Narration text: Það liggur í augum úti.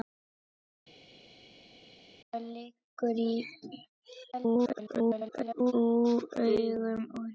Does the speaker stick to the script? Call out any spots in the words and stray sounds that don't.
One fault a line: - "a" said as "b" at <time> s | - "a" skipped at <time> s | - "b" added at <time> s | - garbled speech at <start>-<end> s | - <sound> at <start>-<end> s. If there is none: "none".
- garbled speech at 4.3-5.7 s